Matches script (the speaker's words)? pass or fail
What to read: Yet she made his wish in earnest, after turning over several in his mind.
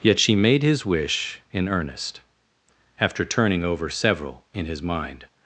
pass